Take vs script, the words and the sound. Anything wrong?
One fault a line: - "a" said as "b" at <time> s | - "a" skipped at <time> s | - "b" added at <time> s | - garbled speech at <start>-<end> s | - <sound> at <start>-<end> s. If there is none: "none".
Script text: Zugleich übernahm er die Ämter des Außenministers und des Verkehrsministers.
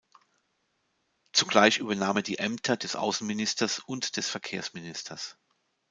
none